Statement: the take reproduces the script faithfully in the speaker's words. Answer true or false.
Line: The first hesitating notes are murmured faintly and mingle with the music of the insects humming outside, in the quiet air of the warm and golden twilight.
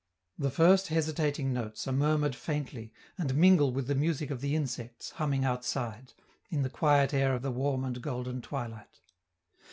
true